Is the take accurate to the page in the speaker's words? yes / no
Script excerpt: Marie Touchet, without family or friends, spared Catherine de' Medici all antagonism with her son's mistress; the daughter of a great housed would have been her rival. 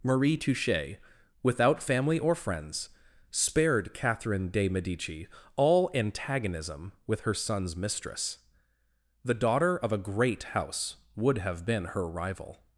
no